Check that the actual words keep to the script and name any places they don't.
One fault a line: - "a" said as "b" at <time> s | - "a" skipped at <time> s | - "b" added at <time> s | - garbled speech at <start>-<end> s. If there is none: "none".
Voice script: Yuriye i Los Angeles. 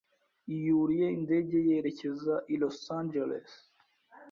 - "indege yerekeza" added at 1.2 s